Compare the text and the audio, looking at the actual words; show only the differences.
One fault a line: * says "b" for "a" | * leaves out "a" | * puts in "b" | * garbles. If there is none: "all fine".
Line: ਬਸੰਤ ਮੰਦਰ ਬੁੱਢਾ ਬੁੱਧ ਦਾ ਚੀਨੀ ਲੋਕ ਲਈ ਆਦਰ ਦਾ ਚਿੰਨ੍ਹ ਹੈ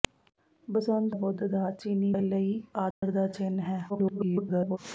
* leaves out "ਮੰਦਰ ਬੁੱਢਾ"
* leaves out "ਲੋਕ"
* garbles